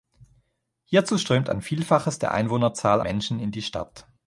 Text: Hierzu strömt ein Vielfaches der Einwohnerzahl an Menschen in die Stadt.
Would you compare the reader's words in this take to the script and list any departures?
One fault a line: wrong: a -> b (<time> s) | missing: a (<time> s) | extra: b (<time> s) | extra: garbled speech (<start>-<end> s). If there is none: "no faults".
missing: an (3.0 s)